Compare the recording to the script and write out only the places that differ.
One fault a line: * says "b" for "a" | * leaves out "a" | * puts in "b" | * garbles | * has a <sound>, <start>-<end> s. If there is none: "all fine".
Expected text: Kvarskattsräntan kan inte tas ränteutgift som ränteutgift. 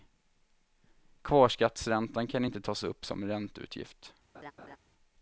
* says "upp" for "ränteutgift"
* has a laugh, 4.3-4.8 s